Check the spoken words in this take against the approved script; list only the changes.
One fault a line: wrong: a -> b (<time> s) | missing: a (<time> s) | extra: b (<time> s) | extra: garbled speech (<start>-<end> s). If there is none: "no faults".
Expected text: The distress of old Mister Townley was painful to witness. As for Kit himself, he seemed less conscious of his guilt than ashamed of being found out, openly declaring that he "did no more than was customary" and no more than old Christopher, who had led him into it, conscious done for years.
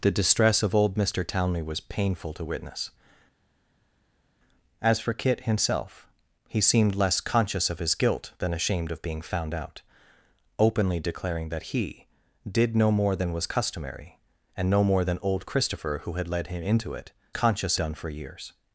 no faults